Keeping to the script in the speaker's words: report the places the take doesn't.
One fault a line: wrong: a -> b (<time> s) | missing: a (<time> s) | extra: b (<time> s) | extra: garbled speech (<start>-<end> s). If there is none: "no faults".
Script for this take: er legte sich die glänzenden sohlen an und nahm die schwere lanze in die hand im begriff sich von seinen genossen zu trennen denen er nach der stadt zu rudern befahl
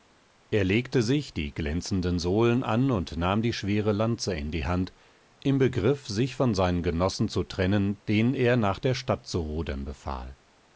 no faults